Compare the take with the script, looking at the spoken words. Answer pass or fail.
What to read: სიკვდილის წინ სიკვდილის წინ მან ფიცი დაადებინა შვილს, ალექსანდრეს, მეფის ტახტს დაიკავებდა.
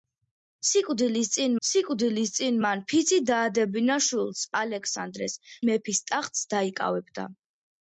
pass